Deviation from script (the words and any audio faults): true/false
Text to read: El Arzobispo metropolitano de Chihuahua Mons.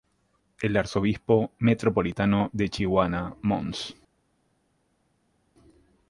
false